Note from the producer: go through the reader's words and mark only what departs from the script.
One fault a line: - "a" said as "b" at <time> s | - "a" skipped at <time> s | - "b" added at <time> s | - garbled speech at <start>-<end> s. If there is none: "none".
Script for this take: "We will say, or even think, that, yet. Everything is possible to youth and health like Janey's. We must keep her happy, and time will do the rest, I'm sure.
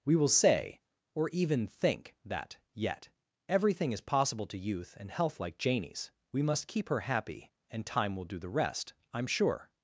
none